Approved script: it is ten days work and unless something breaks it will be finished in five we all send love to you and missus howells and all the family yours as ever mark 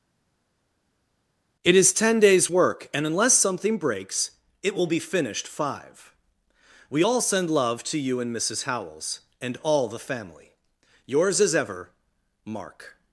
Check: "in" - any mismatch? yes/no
yes